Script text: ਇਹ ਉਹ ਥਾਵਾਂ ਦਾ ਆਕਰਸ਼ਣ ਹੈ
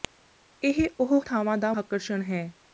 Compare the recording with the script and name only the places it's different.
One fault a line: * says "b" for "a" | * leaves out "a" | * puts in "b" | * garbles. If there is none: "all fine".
all fine